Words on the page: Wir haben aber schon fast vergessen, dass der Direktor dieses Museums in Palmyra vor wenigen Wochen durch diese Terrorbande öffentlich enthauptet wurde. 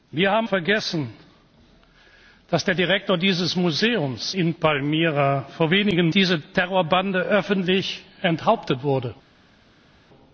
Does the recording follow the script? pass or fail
fail